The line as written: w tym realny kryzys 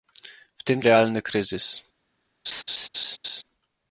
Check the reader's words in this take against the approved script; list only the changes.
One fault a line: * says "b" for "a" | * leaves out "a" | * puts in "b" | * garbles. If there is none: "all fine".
all fine